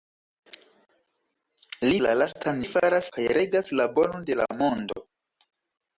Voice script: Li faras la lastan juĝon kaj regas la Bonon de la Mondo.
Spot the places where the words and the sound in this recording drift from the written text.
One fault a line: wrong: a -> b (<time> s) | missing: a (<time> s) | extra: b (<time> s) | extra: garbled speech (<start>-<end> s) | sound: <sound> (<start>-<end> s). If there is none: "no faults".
missing: faras (2.0 s)
wrong: juĝon -> faras (2.7 s)